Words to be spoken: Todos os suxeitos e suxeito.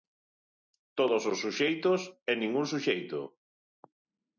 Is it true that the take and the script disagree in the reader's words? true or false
true